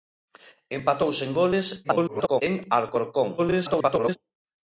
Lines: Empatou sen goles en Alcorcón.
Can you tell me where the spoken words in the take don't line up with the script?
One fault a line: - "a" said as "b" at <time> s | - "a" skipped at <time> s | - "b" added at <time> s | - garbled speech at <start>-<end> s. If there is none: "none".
- garbled speech at 1.8-2.4 s
- garbled speech at 3.4-4.2 s